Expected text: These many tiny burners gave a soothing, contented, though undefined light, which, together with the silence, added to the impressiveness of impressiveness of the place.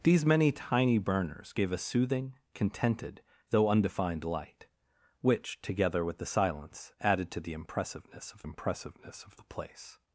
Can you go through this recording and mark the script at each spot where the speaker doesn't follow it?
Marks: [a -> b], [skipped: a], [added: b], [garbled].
These many tiny burners gave a soothing, contented, though undefined light, which, together with the silence, added to the impressiveness of impressiveness of the place.